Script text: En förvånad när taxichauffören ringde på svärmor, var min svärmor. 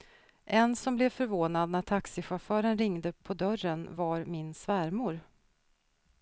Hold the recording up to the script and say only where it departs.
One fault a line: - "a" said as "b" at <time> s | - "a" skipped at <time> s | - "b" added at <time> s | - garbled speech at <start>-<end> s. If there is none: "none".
- "som blev" added at 0.8 s
- "svärmor" said as "dörren" at 3.3 s